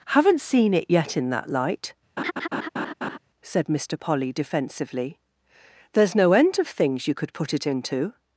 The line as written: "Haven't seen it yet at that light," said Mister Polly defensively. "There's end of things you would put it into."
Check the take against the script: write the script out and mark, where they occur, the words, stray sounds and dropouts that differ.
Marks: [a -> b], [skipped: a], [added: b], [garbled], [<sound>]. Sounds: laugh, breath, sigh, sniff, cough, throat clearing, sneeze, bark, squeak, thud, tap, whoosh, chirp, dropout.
"Haven't seen it yet [at -> in] that light," [laugh] said Mister Polly defensively. "There's [added: no] end of things you [would -> could] put it into."